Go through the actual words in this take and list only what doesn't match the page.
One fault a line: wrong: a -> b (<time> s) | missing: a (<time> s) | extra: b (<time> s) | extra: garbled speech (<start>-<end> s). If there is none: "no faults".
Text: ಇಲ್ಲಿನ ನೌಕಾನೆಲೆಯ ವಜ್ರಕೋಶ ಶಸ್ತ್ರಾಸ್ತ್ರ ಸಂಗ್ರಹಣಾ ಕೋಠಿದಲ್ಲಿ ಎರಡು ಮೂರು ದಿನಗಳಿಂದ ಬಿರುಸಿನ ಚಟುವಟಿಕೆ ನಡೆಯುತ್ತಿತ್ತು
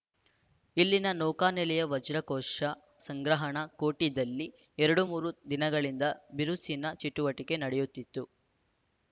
missing: ಶಸ್ತ್ರಾಸ್ತ್ರ (2.7 s)